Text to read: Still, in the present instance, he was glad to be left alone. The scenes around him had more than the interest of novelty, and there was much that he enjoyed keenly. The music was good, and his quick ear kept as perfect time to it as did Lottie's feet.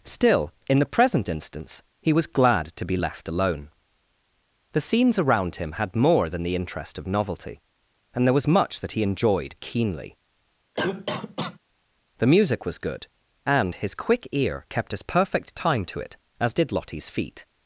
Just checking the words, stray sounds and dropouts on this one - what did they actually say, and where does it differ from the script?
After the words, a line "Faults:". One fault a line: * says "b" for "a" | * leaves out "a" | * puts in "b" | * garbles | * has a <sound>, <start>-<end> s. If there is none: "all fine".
Still, in the present instance, he was glad to be left alone. The scenes around him had more than the interest of novelty, and there was much that he enjoyed keenly. The music was good, and his quick ear kept as perfect time to it as did Lottie's feet.
Faults:
* has a cough, 10.7-11.6 s